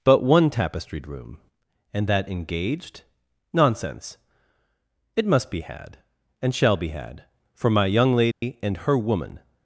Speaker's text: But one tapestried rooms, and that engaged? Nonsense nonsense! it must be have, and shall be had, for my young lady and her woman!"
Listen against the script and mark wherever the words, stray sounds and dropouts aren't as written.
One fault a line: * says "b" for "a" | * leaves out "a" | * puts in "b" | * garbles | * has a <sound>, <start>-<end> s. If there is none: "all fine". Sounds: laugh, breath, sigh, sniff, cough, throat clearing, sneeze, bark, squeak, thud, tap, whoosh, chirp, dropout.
* says "room" for "rooms"
* leaves out "nonsense"
* says "had" for "have"
* has a dropout, 8.3-8.4 s